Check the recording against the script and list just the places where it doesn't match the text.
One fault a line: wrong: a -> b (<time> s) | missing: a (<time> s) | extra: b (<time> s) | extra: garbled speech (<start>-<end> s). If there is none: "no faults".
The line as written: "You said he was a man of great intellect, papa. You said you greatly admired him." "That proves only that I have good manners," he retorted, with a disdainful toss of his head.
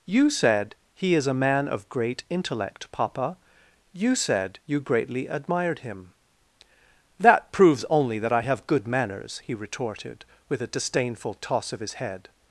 wrong: was -> is (1.1 s)